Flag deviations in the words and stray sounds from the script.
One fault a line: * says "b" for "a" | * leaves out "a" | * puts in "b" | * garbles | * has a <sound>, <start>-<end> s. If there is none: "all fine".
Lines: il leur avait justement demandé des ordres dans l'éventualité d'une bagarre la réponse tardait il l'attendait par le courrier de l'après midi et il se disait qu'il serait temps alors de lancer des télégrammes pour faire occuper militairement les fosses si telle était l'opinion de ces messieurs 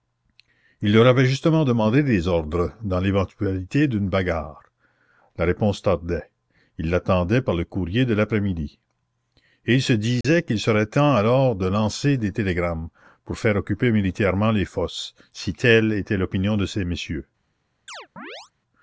* has a dropout, 10.2-10.2 s
* has a chirp, 17.9-18.5 s